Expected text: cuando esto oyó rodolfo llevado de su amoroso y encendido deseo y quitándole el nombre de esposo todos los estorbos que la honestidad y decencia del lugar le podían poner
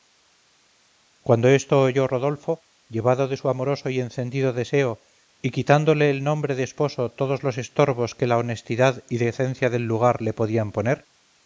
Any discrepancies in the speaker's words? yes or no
no